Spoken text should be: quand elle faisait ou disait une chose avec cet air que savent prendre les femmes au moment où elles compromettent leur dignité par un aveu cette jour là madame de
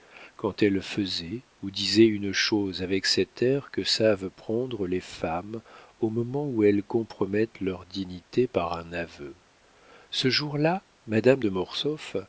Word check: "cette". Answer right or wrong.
wrong